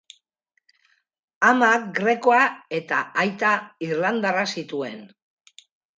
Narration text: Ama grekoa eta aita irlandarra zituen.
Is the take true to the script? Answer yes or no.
yes